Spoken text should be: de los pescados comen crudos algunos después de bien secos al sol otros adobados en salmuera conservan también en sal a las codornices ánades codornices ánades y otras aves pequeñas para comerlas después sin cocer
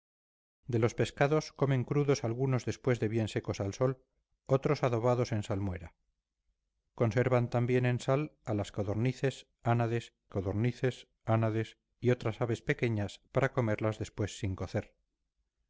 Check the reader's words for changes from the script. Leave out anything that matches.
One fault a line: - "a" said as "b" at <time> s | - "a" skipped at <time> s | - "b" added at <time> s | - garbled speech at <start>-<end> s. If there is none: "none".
none